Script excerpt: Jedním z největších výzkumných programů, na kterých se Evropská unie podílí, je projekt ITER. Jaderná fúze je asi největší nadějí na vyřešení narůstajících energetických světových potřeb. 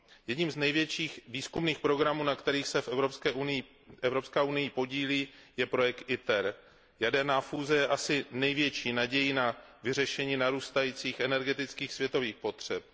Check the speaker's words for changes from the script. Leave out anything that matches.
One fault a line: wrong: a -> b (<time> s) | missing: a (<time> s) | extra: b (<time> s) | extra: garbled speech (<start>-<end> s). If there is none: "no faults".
no faults